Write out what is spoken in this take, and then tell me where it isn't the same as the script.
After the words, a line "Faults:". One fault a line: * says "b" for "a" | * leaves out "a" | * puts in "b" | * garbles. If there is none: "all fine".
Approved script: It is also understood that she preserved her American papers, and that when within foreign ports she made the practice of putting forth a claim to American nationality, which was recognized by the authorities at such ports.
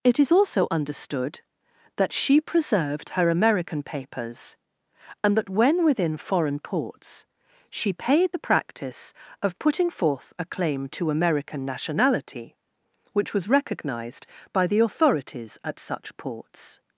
It is also understood that she preserved her American papers, and that when within foreign ports she paid the practice of putting forth a claim to American nationality, which was recognized by the authorities at such ports.
Faults:
* says "paid" for "made"